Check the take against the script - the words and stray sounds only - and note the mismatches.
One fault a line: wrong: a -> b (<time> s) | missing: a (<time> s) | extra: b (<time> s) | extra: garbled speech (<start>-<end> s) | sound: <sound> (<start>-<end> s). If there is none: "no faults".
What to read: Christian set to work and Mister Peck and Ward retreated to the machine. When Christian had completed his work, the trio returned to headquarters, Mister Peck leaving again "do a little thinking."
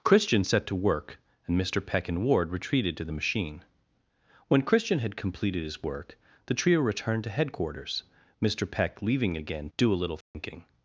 sound: dropout (10.2-10.3 s)